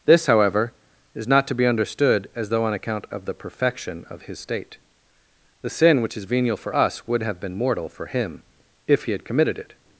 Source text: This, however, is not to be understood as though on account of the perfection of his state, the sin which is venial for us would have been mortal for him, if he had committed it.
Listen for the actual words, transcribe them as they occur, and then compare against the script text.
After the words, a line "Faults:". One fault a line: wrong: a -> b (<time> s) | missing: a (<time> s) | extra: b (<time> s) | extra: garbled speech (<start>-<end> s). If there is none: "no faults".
This, however, is not to be understood as though on account of the perfection of his state, the sin which is venial for us would have been mortal for him, if he had committed it.
Faults:
no faults